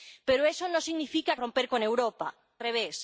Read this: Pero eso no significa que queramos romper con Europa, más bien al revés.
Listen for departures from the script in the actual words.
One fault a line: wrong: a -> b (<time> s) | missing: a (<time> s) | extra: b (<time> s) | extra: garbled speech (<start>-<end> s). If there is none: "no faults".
missing: que queramos (1.4 s)
missing: más bien al (2.4 s)